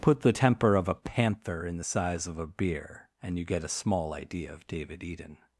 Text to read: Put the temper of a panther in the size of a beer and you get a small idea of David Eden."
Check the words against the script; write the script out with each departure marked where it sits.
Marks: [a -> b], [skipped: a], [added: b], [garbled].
Put the temper of a panther in the size of a beer and you get a small idea of David Eden."